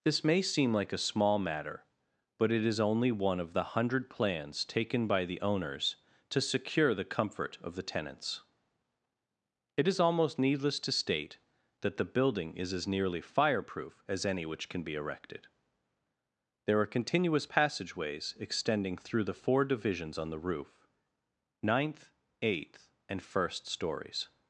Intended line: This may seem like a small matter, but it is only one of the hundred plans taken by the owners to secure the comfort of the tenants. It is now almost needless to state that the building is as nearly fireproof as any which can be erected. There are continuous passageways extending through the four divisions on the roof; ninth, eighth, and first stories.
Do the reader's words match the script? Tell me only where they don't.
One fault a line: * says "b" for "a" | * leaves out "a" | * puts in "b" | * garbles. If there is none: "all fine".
* leaves out "now"